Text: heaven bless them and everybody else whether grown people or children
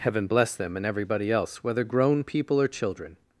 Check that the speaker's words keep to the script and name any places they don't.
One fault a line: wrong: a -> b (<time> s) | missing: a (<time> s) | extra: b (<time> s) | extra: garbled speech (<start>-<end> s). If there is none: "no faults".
no faults